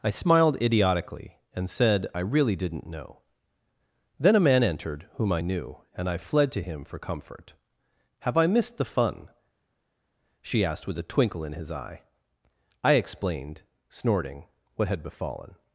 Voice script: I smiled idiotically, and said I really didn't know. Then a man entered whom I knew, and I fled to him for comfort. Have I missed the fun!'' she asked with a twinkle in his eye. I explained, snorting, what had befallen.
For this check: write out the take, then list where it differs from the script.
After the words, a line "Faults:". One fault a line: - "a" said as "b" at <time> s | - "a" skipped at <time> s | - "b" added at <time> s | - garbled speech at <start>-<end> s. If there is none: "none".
I smiled idiotically, and said I really didn't know. Then a man entered whom I knew, and I fled to him for comfort. Have I missed the fun!'' she asked with a twinkle in his eye. I explained, snorting, what had befallen.
Faults:
none